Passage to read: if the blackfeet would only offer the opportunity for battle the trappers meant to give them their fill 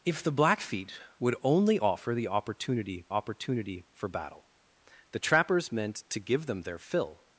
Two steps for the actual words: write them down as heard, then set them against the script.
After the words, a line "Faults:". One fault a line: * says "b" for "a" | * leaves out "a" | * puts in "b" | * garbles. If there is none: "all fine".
if the blackfeet would only offer the opportunity opportunity for battle the trappers meant to give them their fill
Faults:
* puts in "opportunity"